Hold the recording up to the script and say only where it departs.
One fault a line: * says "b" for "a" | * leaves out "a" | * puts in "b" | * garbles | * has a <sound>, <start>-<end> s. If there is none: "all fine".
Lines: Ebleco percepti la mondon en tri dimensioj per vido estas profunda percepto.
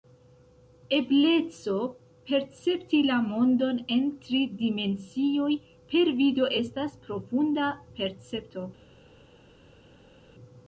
all fine